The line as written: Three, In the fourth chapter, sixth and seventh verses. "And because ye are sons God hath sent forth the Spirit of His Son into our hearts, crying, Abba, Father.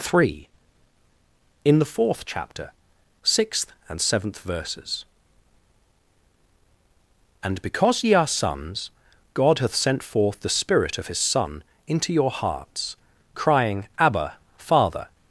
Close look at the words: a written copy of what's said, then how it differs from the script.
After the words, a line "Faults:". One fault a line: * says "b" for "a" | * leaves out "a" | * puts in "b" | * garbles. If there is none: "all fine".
Three, In the fourth chapter, sixth and seventh verses. "And because ye are sons God hath sent forth the Spirit of His Son into your hearts, crying, Abba, Father.
Faults:
* says "your" for "our"